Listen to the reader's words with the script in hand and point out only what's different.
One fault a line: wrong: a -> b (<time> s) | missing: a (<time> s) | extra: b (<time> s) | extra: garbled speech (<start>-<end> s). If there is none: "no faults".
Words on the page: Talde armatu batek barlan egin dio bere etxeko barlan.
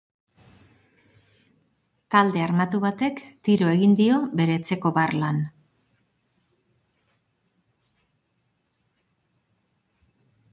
wrong: barlan -> tiro (3.5 s)